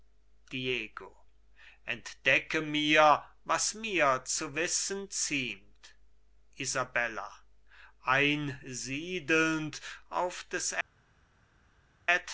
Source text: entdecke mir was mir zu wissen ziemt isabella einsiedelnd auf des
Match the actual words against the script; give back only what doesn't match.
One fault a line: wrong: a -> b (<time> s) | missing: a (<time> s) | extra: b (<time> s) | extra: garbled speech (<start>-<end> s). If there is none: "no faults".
no faults